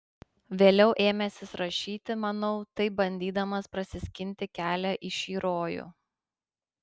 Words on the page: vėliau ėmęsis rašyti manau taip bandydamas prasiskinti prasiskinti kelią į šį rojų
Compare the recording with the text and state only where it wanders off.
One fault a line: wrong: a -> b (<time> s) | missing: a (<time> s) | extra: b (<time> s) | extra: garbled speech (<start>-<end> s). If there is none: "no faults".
missing: prasiskinti (4.5 s)